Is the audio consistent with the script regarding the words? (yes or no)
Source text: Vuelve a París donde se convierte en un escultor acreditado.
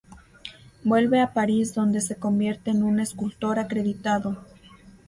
yes